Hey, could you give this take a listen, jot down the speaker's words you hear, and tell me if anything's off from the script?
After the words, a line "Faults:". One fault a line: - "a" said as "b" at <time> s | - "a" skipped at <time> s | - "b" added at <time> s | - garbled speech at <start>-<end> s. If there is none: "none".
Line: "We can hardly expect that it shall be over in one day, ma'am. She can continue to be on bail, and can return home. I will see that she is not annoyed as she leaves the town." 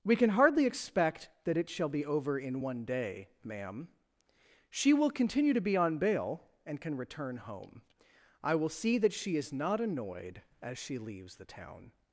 "We can hardly expect that it shall be over in one day, ma'am. She will continue to be on bail, and can return home. I will see that she is not annoyed as she leaves the town."
Faults:
- "can" said as "will" at 4.9 s